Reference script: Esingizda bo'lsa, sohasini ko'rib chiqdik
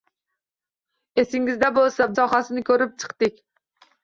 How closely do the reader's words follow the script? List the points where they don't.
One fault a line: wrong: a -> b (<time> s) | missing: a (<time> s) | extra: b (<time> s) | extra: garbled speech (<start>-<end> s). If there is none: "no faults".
no faults